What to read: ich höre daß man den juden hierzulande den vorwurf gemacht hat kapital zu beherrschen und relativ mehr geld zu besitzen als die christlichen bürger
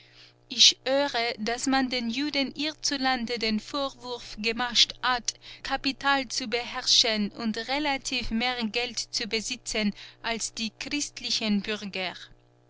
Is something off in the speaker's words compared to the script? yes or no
no